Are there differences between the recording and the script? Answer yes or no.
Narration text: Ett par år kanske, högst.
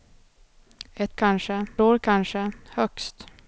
yes